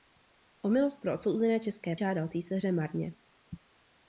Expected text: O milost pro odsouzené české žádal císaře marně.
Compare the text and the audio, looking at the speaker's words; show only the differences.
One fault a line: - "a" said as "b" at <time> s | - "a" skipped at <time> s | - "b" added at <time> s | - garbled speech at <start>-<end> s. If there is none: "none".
none